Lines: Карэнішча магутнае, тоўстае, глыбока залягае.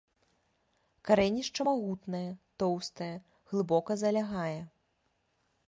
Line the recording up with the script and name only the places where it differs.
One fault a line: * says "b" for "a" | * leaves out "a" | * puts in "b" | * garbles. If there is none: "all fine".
all fine